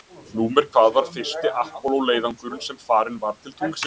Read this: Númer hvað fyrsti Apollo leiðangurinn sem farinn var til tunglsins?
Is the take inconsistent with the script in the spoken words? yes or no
yes